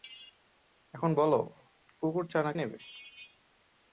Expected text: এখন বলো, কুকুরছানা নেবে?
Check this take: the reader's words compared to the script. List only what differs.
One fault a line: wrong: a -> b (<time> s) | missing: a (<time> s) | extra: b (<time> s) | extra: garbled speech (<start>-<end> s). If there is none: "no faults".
no faults